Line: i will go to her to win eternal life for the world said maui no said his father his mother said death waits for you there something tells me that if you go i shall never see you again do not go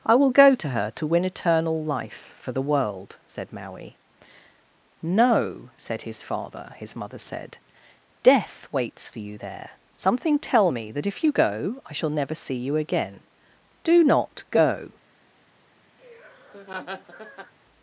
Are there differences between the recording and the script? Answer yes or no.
yes